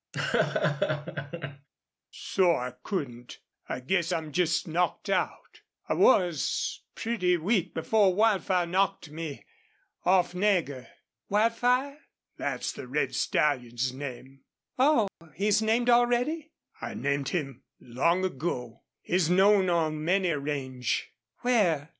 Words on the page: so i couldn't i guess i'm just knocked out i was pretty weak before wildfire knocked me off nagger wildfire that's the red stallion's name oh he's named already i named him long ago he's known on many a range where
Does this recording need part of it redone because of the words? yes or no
no